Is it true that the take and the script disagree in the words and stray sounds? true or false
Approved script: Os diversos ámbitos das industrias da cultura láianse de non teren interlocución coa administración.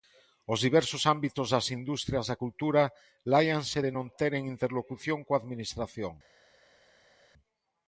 false